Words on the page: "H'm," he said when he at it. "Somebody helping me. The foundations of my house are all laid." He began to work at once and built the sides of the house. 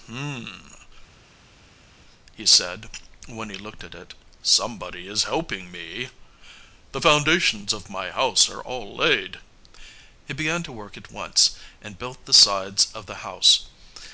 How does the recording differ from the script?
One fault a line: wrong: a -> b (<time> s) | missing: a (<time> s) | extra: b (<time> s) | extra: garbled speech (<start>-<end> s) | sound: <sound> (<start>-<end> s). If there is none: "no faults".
extra: looked (3.6 s)
extra: is (5.1 s)